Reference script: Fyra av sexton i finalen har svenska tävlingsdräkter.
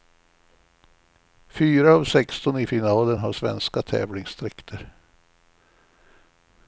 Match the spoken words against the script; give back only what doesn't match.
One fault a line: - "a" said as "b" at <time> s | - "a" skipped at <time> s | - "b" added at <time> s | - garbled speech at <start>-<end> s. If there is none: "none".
none